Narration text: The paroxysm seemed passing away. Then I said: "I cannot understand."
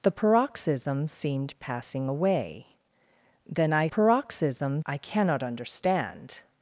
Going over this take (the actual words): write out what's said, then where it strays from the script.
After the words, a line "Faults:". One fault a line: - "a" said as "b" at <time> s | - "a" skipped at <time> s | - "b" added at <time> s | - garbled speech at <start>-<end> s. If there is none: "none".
The paroxysm seemed passing away. Then I paroxysm: "I cannot understand."
Faults:
- "said" said as "paroxysm" at 3.9 s